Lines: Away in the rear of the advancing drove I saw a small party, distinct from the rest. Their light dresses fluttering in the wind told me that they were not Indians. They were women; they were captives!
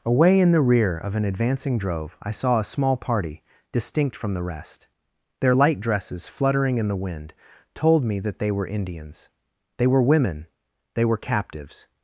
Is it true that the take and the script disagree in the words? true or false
true